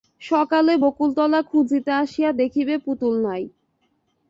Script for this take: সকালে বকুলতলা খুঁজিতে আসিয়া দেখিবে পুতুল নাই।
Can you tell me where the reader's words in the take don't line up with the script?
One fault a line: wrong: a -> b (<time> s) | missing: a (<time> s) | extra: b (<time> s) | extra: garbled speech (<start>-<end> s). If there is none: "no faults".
no faults